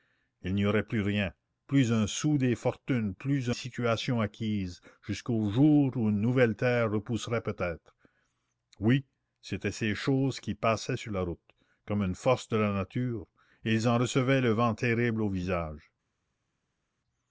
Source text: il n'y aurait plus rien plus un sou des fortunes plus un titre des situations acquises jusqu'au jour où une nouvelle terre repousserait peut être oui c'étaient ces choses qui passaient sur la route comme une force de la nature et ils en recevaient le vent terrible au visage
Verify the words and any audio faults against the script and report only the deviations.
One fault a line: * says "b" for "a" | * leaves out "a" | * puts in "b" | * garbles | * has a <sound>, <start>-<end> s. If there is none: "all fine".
* leaves out "un titre des"